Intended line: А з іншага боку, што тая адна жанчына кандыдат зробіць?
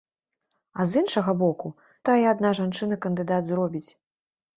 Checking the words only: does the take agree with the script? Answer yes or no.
no